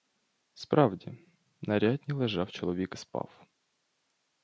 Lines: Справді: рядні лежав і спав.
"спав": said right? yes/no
yes